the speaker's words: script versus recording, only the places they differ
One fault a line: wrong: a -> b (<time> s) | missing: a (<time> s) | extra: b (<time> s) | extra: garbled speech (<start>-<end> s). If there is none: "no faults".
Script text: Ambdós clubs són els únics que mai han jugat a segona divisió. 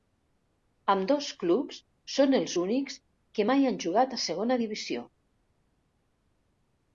no faults